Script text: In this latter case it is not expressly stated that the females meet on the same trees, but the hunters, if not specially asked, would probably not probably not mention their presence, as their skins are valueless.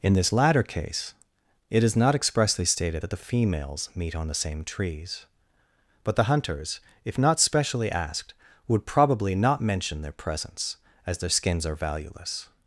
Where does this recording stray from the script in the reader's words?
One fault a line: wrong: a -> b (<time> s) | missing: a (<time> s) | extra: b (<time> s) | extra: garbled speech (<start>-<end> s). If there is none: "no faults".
missing: probably not (9.6 s)